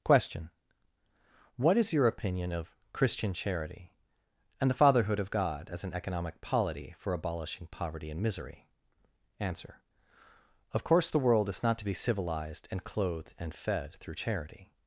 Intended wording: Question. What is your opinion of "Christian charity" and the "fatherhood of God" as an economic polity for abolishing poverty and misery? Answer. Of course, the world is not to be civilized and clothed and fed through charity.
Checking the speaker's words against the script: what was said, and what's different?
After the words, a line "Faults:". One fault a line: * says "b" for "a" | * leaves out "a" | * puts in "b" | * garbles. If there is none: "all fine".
Question. What is your opinion of "Christian charity" and the "fatherhood of God" as an economic polity for abolishing poverty and misery? Answer. Of course, the world is not to be civilized and clothed and fed through charity.
Faults:
all fine